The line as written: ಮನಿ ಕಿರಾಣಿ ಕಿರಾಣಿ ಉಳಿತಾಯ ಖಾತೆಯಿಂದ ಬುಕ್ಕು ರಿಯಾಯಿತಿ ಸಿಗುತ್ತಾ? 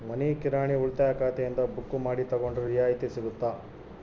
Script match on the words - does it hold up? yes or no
no